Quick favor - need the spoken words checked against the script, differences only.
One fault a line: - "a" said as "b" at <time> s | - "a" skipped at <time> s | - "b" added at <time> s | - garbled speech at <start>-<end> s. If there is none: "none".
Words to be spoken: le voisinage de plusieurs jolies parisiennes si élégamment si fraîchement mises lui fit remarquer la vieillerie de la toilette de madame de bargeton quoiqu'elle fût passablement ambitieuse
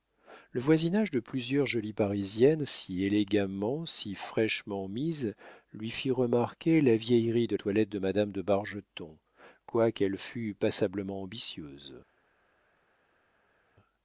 - "la" skipped at 7.5 s